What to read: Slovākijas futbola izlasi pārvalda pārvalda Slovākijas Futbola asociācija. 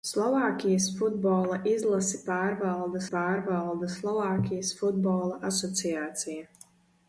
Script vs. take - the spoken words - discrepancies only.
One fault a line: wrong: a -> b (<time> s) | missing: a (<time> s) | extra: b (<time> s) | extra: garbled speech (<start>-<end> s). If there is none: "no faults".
no faults